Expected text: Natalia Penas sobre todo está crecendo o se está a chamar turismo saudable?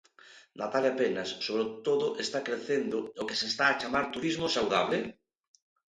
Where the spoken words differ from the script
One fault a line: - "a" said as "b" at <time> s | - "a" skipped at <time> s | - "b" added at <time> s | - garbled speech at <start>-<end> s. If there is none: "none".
- "que" added at 3.3 s